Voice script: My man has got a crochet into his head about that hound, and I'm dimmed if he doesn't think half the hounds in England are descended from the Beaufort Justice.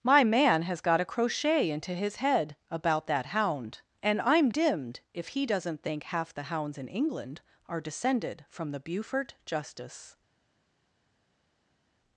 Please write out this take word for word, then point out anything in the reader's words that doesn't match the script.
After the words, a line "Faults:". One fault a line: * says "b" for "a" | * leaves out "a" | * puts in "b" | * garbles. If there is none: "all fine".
My man has got a crochet into his head about that hound, and I'm dimmed if he doesn't think half the hounds in England are descended from the Beaufort Justice.
Faults:
all fine